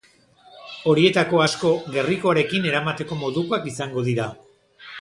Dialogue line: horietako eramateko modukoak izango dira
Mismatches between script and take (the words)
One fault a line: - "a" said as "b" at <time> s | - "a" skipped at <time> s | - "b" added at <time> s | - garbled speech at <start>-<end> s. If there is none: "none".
- "asko gerrikoarekin" added at 1.4 s